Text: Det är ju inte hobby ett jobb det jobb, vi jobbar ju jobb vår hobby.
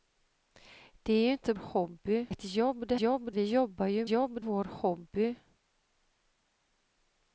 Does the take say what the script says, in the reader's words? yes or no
yes